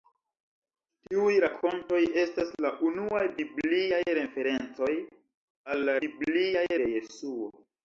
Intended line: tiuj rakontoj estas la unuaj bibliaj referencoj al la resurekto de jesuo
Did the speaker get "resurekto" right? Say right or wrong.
wrong